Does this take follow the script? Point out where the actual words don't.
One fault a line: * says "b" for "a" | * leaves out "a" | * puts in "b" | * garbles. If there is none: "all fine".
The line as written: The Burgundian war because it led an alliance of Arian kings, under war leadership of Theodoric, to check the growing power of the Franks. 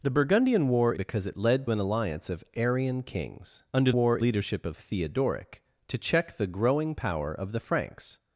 all fine